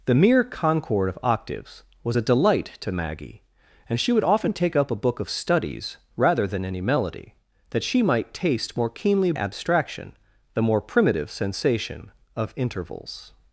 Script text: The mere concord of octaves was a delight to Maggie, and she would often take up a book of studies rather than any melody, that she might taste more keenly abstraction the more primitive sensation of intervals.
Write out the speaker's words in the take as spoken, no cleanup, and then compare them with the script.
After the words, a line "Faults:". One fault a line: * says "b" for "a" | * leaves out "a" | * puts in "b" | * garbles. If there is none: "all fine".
The mere concord of octaves was a delight to Maggie, and she would often take up a book of studies rather than any melody, that she might taste more keenly abstraction the more primitive sensation of intervals.
Faults:
all fine